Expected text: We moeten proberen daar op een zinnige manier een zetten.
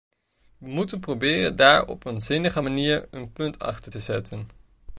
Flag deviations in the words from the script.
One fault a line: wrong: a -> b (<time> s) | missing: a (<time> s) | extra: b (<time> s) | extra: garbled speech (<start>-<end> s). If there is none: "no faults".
extra: punt achter te (3.3 s)